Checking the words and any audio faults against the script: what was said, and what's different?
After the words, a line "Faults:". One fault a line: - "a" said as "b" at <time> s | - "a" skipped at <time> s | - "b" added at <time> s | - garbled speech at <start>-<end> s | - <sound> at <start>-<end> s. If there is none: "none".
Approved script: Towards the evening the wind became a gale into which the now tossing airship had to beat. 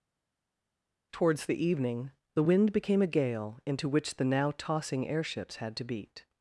Towards the evening the wind became a gale into which the now tossing airships had to beat.
Faults:
- "airship" said as "airships" at 5.1 s